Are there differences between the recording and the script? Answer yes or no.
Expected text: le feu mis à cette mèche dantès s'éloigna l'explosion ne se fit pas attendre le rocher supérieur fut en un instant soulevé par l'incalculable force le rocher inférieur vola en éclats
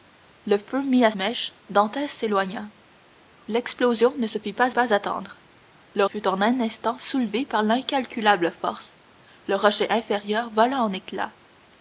yes